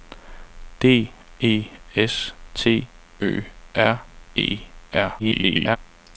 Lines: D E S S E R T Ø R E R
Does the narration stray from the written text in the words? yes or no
yes